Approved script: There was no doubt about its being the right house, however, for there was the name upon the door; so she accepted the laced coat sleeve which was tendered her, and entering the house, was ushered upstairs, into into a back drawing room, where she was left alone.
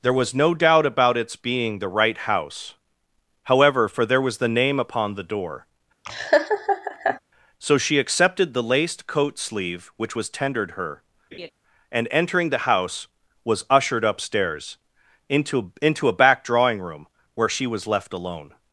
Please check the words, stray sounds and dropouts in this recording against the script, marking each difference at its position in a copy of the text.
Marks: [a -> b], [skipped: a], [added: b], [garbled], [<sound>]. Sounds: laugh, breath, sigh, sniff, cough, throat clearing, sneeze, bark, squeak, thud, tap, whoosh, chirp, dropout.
There was no doubt about its being the right house, however, for there was the name upon the door; [laugh] so she accepted the laced coat sleeve which was tendered her, [laugh] and entering the house, was ushered upstairs, into into a back drawing room, where she was left alone.